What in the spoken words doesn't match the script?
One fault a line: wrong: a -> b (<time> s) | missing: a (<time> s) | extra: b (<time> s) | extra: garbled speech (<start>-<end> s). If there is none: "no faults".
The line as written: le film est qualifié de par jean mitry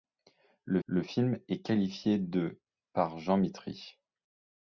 extra: le (0.8 s)